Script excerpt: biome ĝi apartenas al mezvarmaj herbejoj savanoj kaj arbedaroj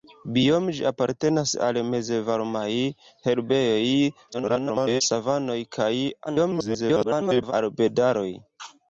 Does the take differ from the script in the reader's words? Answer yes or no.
yes